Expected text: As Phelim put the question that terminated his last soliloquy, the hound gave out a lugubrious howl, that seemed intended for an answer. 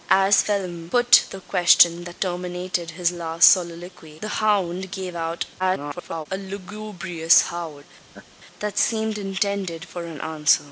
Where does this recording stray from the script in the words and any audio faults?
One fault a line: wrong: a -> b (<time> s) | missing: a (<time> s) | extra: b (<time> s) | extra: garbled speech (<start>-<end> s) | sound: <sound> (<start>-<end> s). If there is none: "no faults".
extra: garbled speech (5.6-6.3 s)
sound: laugh (8.1-8.3 s)